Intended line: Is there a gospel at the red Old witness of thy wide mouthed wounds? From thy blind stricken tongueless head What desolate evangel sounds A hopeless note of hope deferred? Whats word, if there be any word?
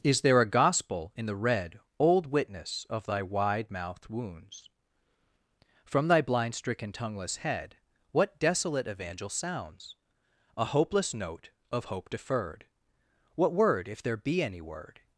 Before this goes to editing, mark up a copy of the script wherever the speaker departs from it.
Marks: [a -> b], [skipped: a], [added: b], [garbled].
Is there a gospel [at -> in] the red Old witness of thy wide mouthed wounds? From thy blind stricken tongueless head What desolate evangel sounds A hopeless note of hope deferred? [Whats -> What] word, if there be any word?